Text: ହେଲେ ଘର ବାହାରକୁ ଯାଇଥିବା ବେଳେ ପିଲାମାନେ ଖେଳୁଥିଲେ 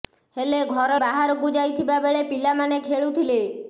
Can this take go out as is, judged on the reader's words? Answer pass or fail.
pass